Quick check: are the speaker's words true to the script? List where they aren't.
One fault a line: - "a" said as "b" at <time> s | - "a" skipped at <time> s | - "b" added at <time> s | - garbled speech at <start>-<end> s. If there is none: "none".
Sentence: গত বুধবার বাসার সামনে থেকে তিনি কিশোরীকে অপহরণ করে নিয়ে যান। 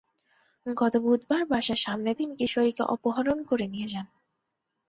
- "থেকে" skipped at 2.1 s